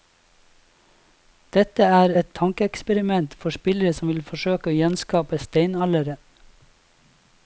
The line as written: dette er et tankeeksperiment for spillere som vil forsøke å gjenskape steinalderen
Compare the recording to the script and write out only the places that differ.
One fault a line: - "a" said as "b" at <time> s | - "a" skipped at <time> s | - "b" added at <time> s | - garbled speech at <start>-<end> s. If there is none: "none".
none